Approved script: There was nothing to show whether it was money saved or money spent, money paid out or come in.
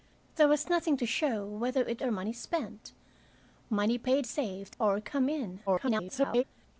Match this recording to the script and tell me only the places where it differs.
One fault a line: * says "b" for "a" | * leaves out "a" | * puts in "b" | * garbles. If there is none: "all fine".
* leaves out "was money saved"
* says "saved" for "out"
* garbles